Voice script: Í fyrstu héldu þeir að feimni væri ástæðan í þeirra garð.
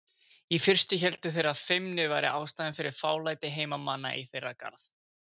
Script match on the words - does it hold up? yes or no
no